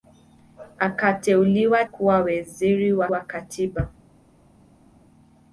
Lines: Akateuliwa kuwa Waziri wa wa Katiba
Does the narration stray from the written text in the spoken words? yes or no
no